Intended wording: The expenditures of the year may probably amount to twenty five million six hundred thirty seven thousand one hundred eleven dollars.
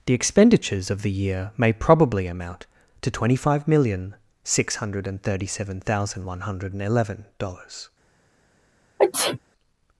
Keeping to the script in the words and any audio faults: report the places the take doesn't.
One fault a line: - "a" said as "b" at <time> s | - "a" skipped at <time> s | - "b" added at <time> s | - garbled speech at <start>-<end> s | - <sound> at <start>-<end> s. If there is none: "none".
- sneeze at 9.0-9.4 s